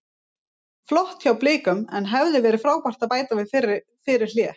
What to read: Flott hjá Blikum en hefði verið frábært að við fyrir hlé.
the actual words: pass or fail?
fail